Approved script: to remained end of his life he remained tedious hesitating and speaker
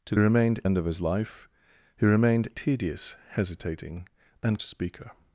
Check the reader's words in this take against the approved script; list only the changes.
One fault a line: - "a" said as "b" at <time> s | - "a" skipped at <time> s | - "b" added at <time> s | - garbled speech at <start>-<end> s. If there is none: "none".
none